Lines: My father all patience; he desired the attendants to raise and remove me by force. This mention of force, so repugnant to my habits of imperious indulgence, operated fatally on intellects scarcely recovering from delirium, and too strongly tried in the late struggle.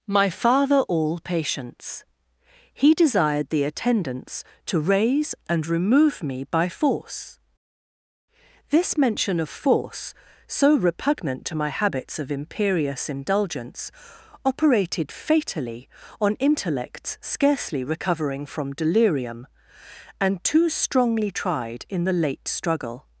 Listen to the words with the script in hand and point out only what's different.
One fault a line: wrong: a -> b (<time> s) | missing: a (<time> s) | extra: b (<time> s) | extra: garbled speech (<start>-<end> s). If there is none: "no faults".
no faults